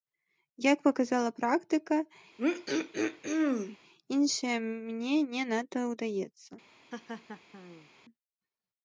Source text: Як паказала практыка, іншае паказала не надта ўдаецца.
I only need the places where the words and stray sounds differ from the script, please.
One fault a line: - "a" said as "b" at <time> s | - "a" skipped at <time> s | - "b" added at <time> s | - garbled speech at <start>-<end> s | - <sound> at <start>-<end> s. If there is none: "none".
- throat clearing at 2.4-3.8 s
- "паказала" said as "мне" at 4.7 s
- laugh at 6.9-7.9 s